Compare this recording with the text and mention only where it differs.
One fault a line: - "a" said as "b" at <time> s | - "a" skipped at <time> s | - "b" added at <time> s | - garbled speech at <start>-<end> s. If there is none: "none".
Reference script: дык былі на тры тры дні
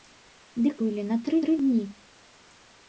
none